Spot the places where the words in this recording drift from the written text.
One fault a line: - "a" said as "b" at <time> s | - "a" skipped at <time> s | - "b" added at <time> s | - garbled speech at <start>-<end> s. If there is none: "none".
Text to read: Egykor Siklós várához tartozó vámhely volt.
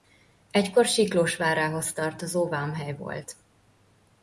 none